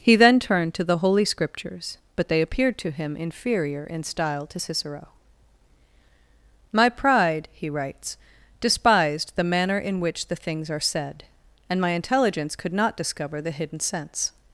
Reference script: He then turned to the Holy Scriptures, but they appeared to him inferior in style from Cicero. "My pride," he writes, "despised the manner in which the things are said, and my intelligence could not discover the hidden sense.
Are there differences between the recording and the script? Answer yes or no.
yes